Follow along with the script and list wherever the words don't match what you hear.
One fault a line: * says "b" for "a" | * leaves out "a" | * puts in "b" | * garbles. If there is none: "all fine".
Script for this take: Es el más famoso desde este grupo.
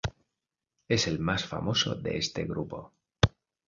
* says "de" for "desde"